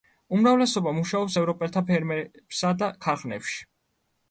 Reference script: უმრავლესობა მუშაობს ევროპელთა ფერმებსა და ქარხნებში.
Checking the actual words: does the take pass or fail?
pass